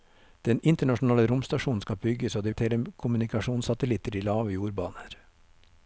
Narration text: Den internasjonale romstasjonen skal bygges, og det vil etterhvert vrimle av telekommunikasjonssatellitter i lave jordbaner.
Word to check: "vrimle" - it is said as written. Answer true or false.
false